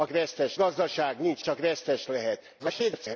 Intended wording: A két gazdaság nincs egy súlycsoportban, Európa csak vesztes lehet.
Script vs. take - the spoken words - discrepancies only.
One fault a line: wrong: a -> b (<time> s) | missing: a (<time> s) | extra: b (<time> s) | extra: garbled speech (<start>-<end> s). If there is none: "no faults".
wrong: két -> vesztes (0.1 s)
missing: egy súlycsoportban Európa (1.4 s)
extra: garbled speech (2.6-3.2 s)